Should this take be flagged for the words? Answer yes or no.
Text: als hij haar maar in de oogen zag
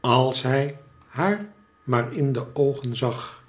no